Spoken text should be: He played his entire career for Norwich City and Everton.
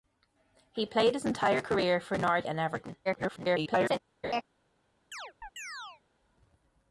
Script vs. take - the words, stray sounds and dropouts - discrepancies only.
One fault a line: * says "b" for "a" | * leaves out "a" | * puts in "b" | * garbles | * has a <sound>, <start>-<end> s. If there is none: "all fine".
* leaves out "City"
* garbles
* has a laugh, 4.2-4.4 s
* has a chirp, 5.1-6.0 s